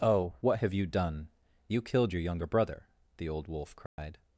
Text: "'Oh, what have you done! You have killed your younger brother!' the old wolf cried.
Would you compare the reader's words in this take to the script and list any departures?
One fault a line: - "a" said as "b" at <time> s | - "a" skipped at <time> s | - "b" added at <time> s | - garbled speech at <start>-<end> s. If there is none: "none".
- "have" skipped at 1.8 s